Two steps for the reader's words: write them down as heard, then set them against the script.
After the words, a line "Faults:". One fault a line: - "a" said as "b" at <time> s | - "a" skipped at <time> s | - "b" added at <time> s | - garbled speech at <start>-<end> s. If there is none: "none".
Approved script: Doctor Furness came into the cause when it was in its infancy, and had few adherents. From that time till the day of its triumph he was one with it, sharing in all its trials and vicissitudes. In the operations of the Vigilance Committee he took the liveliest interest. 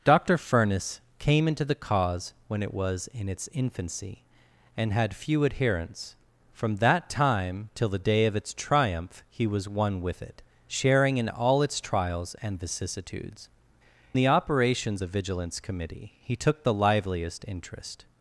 Doctor Furness came into the cause when it was in its infancy, and had few adherents. From that time till the day of its triumph he was one with it, sharing in all its trials and vicissitudes. The operations the Vigilance Committee he took the liveliest interest.
Faults:
- "In" skipped at 13.5 s
- "of" skipped at 15.0 s